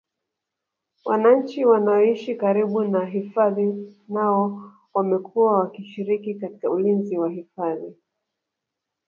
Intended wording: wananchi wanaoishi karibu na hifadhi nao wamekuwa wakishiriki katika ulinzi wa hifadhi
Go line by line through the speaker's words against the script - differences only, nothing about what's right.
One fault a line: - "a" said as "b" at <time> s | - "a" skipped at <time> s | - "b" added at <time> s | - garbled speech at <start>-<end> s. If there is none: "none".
none